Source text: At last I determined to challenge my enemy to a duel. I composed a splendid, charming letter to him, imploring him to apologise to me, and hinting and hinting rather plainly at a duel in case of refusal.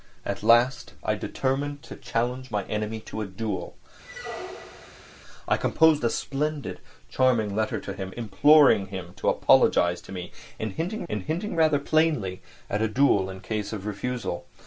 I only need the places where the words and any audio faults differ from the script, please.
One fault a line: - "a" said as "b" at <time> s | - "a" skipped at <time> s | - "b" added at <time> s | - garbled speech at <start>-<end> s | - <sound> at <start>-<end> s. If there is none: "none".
- squeak at 4.0-5.2 s